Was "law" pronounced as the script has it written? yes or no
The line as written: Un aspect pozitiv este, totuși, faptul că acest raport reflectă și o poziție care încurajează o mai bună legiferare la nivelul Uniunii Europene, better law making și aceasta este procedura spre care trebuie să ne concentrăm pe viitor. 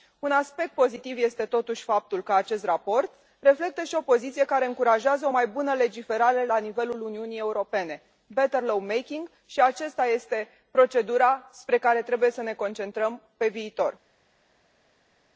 yes